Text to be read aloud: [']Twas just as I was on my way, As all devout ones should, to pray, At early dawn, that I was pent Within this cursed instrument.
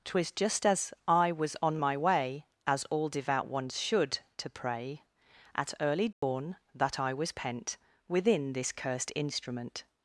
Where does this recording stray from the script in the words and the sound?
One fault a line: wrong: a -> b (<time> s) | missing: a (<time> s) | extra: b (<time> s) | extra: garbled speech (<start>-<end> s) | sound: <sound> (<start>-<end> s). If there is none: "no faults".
sound: dropout (6.1-6.2 s)